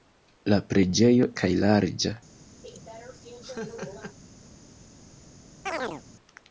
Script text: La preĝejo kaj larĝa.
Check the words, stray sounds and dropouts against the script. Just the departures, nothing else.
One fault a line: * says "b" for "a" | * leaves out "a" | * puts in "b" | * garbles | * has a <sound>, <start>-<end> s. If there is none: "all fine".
* has a laugh, 2.6-4.2 s
* has a chirp, 5.7-6.0 s